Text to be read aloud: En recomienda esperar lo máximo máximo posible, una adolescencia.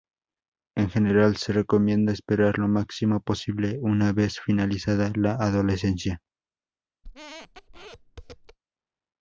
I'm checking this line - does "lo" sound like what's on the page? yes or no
yes